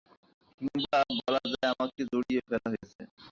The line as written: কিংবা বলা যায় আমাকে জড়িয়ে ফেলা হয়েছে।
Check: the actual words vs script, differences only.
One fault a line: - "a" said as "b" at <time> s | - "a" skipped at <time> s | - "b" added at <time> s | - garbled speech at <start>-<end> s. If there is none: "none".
none